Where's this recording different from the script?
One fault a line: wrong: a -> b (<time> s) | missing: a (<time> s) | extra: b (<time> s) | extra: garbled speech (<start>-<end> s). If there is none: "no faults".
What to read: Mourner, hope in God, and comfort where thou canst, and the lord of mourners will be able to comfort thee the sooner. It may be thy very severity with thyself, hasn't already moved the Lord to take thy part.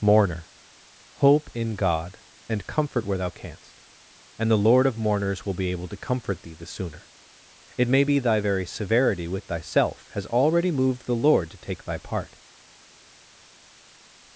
wrong: hasn't -> has (10.1 s)